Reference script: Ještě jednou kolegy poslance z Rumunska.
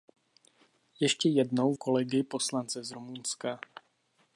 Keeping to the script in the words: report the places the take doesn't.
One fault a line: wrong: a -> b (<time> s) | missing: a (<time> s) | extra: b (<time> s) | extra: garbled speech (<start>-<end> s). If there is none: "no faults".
no faults